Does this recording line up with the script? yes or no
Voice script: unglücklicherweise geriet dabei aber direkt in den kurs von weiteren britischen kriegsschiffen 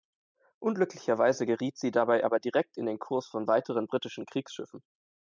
no